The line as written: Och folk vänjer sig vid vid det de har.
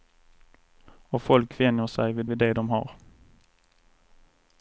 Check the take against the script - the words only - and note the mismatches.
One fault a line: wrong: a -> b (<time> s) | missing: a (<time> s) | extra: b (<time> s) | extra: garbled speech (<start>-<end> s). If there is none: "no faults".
no faults